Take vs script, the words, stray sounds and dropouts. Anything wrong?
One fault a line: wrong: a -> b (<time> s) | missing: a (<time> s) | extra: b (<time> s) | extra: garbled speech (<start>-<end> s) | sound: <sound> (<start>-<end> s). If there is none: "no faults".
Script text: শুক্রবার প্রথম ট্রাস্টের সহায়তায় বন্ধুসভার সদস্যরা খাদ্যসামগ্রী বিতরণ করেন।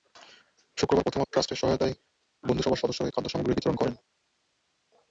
no faults